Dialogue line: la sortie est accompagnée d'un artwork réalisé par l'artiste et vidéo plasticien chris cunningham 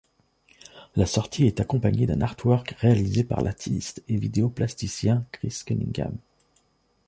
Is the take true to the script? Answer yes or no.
yes